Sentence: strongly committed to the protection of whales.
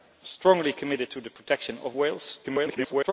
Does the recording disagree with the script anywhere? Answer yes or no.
yes